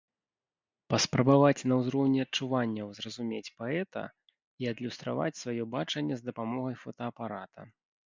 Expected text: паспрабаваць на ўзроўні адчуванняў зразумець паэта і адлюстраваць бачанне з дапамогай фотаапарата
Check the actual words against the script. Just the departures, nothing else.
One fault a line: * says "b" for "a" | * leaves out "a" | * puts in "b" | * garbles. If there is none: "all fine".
* puts in "сваё"